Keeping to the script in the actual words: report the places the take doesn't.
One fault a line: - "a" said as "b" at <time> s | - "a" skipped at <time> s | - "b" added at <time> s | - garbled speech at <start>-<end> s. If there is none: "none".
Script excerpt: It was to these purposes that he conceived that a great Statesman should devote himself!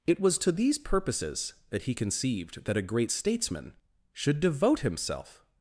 none